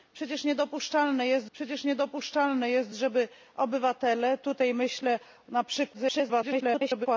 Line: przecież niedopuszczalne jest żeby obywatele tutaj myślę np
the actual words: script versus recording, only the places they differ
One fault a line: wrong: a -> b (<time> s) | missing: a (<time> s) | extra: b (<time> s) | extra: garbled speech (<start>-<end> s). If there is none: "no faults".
extra: przecież niedopuszczalne jest (1.5 s)
extra: garbled speech (5.9-7.1 s)